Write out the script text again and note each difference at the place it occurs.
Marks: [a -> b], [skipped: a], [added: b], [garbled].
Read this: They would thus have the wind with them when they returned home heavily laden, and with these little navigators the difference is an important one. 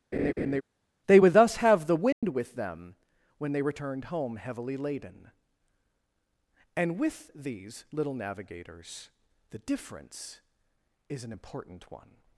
They would thus have the wind with them when they returned home heavily laden, and with these little navigators the difference is an important one.